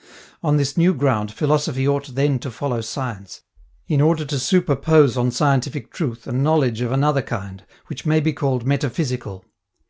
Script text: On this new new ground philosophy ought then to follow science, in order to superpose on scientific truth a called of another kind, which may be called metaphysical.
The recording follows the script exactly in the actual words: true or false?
false